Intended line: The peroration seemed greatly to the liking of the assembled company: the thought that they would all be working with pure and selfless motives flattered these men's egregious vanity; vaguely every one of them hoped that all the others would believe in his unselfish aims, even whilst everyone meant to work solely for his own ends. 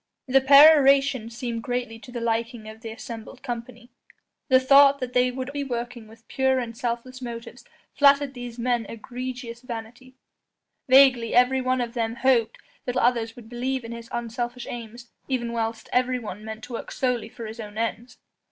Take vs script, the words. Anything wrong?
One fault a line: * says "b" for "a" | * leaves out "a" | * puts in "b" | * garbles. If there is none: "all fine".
* leaves out "all"
* leaves out "all"